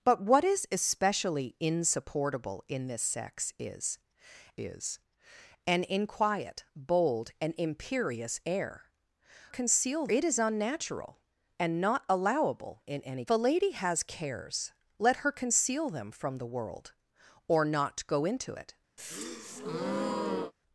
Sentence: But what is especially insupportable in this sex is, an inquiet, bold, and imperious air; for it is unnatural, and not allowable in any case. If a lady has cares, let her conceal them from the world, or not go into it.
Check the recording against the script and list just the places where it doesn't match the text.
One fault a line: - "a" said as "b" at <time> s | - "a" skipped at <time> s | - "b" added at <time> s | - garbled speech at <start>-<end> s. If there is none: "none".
- "is" added at 4.6 s
- "for" said as "conceal" at 9.5 s
- "case If" skipped at 13.2 s